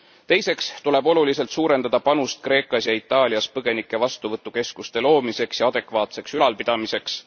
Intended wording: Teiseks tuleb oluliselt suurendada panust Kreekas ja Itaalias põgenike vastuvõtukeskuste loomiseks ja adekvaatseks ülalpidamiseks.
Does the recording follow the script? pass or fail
pass